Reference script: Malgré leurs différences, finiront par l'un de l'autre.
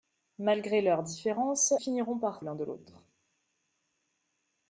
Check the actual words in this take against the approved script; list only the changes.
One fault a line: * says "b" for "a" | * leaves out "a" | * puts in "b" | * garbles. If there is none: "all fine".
all fine